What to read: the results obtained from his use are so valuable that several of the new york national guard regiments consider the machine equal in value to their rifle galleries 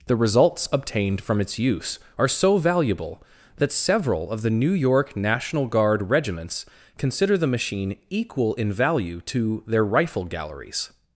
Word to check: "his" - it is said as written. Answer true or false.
false